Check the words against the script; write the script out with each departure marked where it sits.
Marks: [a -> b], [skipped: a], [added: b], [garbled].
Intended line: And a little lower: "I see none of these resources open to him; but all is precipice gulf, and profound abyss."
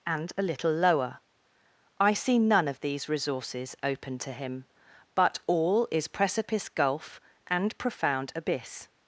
And a little lower: "I see none of these resources open to him; but all is precipice gulf, and profound abyss."